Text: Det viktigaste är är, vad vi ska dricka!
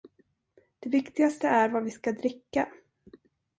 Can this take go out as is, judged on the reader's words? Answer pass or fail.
fail